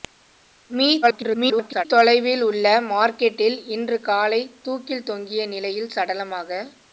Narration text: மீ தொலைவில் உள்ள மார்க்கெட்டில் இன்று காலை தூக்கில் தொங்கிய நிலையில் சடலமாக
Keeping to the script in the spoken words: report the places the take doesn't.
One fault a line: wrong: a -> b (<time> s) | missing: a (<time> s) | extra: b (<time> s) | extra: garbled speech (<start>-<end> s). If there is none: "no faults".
extra: garbled speech (1.0-1.9 s)